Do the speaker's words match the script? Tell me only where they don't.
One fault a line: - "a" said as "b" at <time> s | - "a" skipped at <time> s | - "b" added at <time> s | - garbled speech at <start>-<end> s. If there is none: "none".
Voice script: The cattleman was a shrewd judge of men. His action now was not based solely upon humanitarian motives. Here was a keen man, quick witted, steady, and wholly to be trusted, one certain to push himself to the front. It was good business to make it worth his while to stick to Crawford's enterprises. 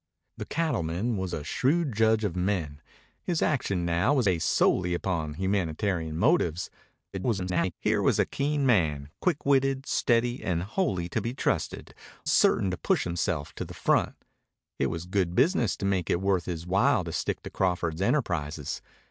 - "not" skipped at 4.3 s
- garbled speech at 7.1-7.7 s
- "one" skipped at 11.9 s